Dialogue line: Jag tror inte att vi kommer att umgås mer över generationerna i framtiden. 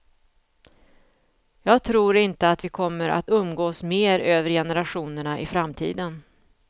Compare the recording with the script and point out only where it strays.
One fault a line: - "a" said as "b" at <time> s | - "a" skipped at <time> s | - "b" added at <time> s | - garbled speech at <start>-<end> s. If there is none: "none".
none